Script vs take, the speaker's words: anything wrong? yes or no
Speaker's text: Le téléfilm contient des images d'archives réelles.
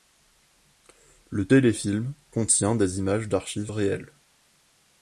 no